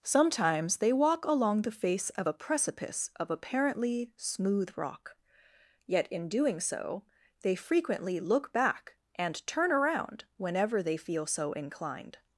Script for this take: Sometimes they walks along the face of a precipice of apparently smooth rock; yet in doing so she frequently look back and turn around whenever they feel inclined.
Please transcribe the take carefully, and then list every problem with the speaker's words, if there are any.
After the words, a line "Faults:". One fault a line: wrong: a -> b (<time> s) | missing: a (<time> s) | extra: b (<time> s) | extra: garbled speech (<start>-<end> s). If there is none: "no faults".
Sometimes they walk along the face of a precipice of apparently smooth rock; yet in doing so they frequently look back and turn around whenever they feel so inclined.
Faults:
wrong: walks -> walk (0.9 s)
wrong: she -> they (7.4 s)
extra: so (11.3 s)